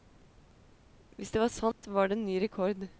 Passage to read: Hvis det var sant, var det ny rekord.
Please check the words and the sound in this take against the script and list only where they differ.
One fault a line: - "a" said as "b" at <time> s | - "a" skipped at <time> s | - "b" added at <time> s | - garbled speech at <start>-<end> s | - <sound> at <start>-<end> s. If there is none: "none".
- dropout at 1.7-1.8 s